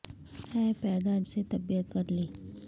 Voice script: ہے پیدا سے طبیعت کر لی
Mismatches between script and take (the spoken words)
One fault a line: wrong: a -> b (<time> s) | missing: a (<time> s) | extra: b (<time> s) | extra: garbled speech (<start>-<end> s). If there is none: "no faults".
no faults